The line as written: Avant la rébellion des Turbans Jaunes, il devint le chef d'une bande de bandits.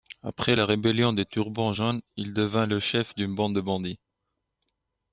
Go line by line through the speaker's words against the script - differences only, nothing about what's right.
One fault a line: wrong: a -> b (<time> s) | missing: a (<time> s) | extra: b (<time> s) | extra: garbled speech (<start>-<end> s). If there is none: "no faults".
wrong: Avant -> Après (0.2 s)